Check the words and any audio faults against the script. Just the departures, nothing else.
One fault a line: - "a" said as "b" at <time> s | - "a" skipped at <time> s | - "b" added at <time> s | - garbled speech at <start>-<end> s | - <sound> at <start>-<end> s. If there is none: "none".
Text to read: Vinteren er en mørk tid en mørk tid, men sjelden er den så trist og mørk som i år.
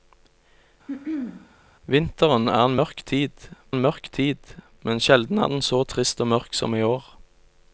- throat clearing at 0.9-1.6 s